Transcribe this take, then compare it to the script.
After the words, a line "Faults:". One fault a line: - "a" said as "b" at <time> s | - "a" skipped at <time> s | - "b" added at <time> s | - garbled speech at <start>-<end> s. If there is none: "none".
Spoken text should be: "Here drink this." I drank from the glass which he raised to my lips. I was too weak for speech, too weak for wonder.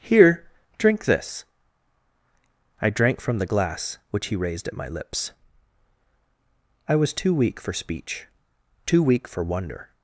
"Here drink this." I drank from the glass which he raised at my lips. I was too weak for speech, too weak for wonder.
Faults:
- "to" said as "at" at 4.7 s